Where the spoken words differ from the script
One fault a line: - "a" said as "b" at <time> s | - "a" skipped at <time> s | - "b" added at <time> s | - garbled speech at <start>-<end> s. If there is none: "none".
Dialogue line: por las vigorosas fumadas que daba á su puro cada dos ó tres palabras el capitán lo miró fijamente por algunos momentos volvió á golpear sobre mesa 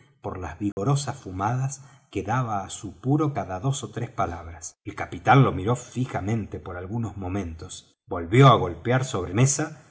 none